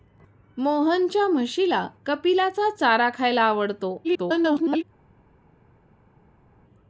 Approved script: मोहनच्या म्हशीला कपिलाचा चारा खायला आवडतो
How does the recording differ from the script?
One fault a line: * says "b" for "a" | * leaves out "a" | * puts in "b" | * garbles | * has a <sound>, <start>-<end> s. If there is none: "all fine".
* garbles